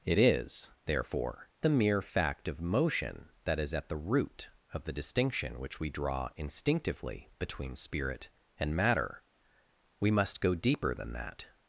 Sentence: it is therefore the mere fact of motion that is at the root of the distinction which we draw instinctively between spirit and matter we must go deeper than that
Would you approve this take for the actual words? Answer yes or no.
yes